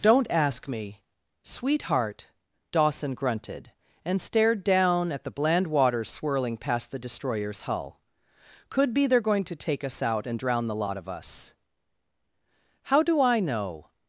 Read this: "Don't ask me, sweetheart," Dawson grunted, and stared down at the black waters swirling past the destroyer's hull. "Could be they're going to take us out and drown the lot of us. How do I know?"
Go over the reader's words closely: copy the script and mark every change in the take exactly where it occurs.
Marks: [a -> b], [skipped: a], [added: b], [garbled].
"Don't ask me, sweetheart," Dawson grunted, and stared down at the [black -> bland] waters swirling past the destroyer's hull. "Could be they're going to take us out and drown the lot of us. How do I know?"